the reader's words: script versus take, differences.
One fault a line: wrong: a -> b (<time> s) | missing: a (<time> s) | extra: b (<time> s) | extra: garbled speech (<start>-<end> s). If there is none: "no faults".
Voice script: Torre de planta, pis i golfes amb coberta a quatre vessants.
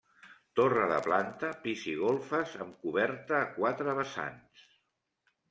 no faults